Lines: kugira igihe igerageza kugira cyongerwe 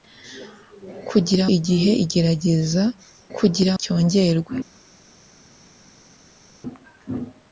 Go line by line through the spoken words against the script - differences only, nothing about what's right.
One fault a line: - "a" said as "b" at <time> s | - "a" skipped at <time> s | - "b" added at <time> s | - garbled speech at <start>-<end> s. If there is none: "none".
none